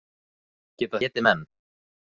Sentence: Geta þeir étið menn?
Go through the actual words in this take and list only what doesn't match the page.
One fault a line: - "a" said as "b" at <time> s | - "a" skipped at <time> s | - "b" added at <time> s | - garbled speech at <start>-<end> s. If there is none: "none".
- "þeir" skipped at 1.0 s